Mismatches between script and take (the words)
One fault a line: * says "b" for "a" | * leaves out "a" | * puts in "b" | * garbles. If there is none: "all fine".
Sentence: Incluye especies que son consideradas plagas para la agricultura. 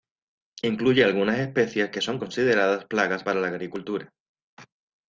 * puts in "algunas"